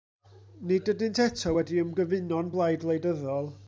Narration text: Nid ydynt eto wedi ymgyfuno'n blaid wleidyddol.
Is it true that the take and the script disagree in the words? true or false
false